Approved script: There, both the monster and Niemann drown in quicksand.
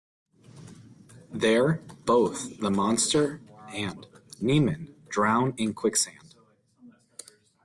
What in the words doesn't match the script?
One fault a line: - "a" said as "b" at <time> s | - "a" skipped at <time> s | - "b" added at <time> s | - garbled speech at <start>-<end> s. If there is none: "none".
none